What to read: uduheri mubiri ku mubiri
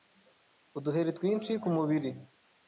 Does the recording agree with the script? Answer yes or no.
no